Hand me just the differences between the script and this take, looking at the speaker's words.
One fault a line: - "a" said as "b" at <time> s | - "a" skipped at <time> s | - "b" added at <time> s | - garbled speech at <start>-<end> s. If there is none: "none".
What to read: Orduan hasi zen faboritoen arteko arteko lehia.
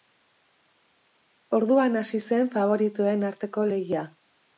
- "arteko" skipped at 3.7 s